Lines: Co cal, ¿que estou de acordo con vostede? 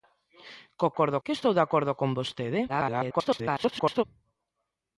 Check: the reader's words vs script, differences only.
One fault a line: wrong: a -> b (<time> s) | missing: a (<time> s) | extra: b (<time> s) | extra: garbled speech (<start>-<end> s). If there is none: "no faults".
wrong: cal -> acordo (0.9 s)
extra: garbled speech (2.7-4.0 s)